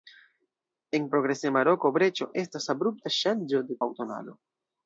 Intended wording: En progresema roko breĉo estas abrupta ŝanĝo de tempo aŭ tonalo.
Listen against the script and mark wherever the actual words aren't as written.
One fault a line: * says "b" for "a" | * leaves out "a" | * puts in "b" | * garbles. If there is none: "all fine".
* leaves out "tempo"